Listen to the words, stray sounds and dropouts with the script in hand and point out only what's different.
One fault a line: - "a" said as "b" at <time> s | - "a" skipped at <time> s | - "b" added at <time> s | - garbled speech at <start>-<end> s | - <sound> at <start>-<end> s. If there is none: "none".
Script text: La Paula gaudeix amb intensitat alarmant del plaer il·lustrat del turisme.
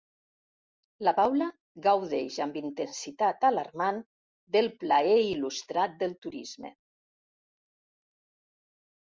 none